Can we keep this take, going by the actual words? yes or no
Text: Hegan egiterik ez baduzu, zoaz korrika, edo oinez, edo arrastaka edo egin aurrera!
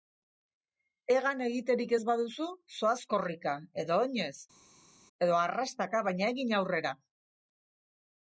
no